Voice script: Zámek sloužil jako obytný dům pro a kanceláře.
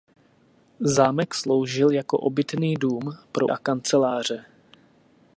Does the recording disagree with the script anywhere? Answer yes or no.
no